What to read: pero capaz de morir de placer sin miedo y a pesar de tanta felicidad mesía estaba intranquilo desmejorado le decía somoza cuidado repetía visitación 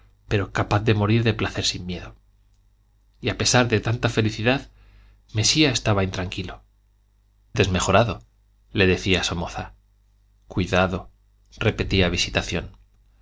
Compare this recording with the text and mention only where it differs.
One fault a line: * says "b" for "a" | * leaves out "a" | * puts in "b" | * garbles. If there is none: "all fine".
all fine